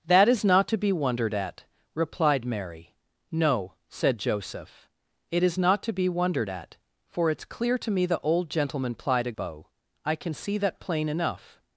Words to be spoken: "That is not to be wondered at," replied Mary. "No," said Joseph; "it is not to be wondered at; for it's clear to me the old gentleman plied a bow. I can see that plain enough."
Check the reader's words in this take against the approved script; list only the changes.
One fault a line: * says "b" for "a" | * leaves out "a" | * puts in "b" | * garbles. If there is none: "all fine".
all fine